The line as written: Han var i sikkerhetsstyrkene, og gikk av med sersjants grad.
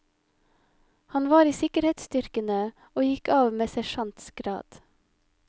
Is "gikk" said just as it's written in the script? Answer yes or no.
yes